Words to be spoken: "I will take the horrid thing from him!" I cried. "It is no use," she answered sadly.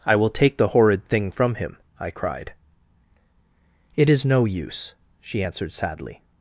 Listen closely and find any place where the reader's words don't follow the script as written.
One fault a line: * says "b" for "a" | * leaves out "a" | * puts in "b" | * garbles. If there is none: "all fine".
all fine